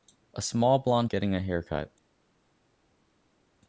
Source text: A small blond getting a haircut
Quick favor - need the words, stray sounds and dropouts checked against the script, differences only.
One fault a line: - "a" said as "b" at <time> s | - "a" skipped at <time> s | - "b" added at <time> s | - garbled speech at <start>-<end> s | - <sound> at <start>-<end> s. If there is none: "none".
none